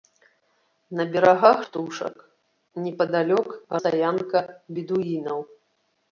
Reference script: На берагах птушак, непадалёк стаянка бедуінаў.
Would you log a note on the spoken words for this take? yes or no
no